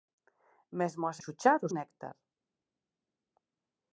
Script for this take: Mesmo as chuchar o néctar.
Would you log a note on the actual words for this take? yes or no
no